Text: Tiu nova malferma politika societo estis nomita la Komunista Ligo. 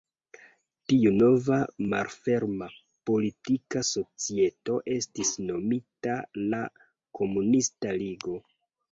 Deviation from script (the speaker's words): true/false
false